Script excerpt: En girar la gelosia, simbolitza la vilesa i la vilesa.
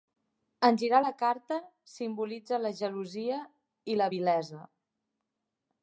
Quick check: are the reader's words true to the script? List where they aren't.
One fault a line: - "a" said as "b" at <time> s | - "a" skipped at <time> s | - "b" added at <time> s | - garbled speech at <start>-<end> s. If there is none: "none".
- "gelosia" said as "carta" at 1.2 s
- "vilesa" said as "gelosia" at 2.8 s